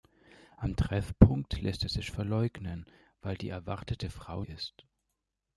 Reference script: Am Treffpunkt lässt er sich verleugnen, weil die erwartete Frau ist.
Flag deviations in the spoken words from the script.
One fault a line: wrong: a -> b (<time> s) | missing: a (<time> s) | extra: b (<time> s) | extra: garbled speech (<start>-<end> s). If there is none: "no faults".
no faults